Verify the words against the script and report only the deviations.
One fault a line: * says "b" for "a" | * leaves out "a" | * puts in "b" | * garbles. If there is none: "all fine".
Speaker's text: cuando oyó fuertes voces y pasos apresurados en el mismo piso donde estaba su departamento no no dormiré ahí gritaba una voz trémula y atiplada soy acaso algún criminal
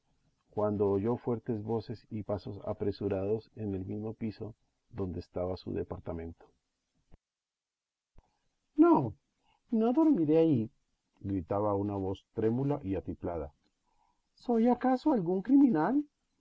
all fine